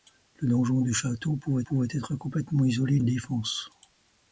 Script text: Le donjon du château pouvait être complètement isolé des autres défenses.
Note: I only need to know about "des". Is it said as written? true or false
false